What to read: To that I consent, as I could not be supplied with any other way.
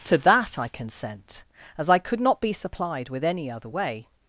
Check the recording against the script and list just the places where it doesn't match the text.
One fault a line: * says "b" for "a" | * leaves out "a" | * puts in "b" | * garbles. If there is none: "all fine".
all fine